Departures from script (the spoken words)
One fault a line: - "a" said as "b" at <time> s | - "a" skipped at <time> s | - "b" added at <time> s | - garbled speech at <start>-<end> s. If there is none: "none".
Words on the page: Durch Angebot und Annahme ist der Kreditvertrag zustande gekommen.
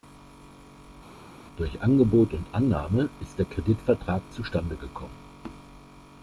none